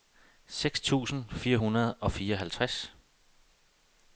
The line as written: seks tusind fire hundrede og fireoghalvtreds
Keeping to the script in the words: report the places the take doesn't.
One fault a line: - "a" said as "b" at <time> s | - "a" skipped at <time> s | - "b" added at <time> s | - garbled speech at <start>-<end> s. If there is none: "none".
none